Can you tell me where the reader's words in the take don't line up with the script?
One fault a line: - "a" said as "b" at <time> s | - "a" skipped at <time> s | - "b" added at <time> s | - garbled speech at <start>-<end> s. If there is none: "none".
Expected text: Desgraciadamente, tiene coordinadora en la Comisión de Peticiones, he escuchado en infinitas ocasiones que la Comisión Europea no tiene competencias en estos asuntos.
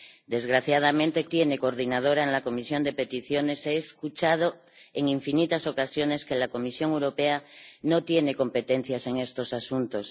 none